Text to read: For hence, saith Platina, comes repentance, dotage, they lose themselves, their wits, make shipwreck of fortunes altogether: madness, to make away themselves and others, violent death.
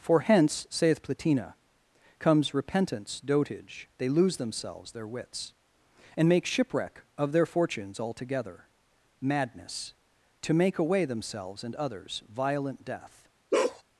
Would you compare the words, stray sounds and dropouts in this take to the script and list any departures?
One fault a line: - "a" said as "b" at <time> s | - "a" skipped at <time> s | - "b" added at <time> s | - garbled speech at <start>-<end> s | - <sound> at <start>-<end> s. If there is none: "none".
- "and" added at 6.1 s
- "their" added at 7.3 s
- bark at 13.5-13.8 s